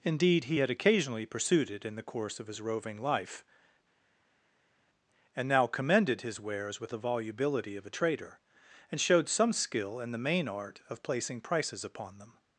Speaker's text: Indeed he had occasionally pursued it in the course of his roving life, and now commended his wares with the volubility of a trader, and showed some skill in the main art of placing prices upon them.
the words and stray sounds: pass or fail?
pass